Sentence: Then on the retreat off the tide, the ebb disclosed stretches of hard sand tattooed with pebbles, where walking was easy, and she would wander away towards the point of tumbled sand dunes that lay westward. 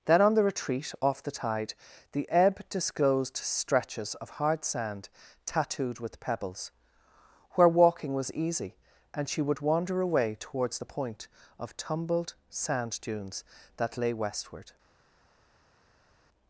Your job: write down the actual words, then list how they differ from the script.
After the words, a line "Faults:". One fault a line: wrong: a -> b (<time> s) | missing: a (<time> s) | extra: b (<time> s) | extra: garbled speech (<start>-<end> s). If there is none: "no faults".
Then on the retreat off the tide, the ebb disclosed stretches of hard sand tattooed with pebbles, where walking was easy, and she would wander away towards the point of tumbled sand dunes that lay westward.
Faults:
no faults